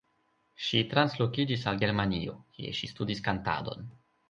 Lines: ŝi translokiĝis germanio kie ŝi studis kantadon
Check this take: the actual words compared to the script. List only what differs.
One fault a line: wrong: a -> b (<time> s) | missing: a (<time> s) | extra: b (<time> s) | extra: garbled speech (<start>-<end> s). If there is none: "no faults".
extra: al (1.7 s)